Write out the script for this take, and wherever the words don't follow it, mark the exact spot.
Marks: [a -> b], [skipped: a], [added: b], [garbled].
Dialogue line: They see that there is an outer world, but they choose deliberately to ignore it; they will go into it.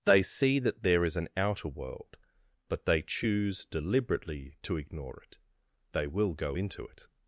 They see that there is an outer world, but they choose deliberately to ignore it; they will go into it.